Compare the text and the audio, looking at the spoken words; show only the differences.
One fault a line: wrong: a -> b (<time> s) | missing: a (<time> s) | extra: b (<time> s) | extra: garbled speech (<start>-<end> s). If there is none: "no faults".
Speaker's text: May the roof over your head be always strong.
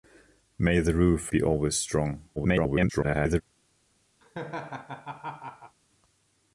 missing: over your head (1.3 s)
extra: garbled speech (2.4-3.4 s)